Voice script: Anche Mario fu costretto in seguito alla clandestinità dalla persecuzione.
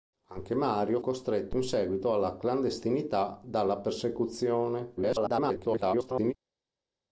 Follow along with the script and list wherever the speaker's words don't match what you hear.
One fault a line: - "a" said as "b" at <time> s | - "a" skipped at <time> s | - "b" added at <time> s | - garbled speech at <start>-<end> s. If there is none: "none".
- "fu" skipped at 1.0 s
- garbled speech at 5.0-6.3 s